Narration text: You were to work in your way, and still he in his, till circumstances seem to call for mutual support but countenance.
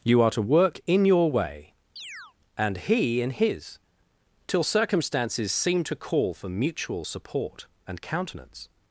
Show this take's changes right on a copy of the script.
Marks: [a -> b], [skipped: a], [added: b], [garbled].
You [were -> are] to work in your way, and [skipped: still] he in his, till circumstances seem to call for mutual support [but -> and] countenance.